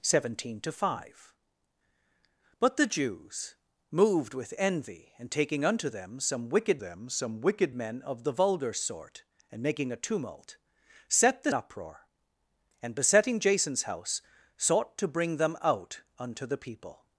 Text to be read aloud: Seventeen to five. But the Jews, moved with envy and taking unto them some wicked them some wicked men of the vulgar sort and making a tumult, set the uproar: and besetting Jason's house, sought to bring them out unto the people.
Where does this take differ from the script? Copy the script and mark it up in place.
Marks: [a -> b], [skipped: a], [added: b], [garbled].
Seventeen to five. But the Jews, moved with envy and taking unto them some wicked them some wicked men of the vulgar sort and making a tumult, set the uproar: and besetting Jason's house, sought to bring them out unto the people.